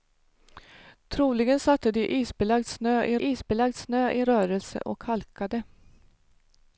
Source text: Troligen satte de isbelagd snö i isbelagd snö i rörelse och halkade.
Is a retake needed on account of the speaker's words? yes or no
no